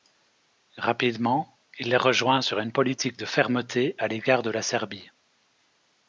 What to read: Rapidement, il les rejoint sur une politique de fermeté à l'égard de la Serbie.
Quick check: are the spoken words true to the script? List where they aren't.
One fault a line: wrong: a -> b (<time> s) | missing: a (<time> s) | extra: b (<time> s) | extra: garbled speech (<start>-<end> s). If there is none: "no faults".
no faults